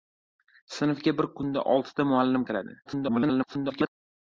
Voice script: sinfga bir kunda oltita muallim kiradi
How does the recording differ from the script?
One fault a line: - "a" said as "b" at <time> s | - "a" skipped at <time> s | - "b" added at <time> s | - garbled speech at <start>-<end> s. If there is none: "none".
- garbled speech at 2.9-3.9 s